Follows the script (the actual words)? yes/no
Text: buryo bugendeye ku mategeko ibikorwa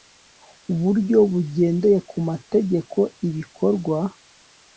yes